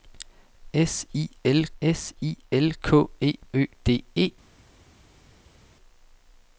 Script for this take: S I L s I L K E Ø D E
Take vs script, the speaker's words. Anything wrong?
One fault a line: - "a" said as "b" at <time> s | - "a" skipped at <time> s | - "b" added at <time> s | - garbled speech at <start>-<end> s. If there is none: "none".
none